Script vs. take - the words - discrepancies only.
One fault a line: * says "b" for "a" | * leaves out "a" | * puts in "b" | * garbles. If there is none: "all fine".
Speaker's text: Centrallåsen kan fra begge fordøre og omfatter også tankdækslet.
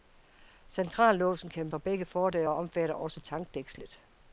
all fine